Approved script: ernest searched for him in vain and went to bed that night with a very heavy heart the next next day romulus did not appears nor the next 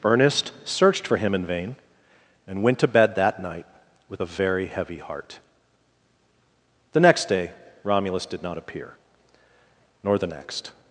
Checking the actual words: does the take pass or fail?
fail